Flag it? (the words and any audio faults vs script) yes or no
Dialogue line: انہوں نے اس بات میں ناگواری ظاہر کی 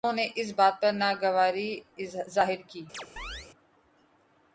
yes